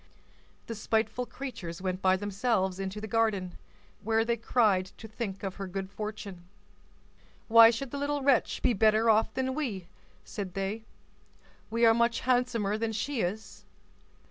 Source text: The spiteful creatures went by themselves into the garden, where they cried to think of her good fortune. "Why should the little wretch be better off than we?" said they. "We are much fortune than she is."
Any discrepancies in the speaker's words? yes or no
yes